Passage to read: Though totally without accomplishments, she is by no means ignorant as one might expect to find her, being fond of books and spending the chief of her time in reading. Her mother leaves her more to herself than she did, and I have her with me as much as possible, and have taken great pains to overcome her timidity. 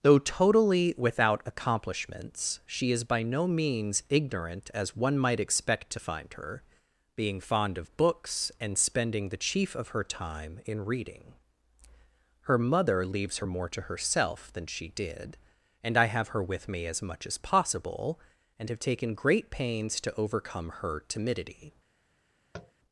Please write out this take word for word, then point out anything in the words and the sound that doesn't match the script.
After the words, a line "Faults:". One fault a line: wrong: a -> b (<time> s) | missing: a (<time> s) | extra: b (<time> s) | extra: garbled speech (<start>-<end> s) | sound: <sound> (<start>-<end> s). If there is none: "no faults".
Though totally without accomplishments, she is by no means ignorant as one might expect to find her, being fond of books and spending the chief of her time in reading. Her mother leaves her more to herself than she did, and I have her with me as much as possible, and have taken great pains to overcome her timidity.
Faults:
sound: tap (22.5-22.7 s)